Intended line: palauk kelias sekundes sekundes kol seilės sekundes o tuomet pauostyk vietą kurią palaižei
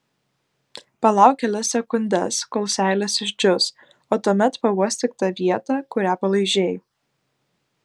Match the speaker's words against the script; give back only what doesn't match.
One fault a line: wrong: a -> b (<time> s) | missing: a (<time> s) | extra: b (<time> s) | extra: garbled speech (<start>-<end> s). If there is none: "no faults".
missing: sekundes (2.4 s)
wrong: sekundes -> išdžius (3.3 s)
extra: tą (5.2 s)